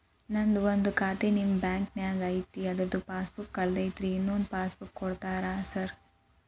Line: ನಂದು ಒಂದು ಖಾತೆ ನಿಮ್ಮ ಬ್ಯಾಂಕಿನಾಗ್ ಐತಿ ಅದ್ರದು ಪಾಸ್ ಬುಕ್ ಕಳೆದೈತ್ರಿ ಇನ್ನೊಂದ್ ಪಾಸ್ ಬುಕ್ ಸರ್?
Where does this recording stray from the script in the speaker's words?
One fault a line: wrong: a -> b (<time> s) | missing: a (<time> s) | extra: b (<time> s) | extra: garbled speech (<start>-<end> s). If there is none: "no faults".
extra: ಕೂಡ್ತೇರಾ (5.0 s)